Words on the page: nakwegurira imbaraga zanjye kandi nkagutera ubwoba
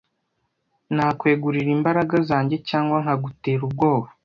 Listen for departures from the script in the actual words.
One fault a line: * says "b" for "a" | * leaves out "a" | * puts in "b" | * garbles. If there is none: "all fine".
* says "cyangwa" for "kandi"